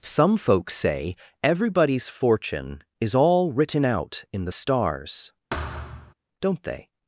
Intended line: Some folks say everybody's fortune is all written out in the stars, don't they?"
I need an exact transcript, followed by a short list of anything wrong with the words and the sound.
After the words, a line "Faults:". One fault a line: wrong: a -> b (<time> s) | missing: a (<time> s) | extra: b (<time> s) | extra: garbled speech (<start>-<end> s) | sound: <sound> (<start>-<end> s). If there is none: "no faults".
Some folks say everybody's fortune is all written out in the stars, don't they?"
Faults:
sound: thud (5.5-6.1 s)